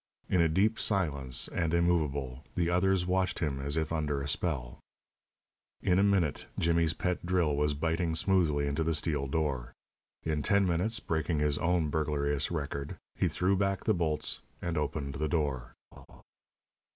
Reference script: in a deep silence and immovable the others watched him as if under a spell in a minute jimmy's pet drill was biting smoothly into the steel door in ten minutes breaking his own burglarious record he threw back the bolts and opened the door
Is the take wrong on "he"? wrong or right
right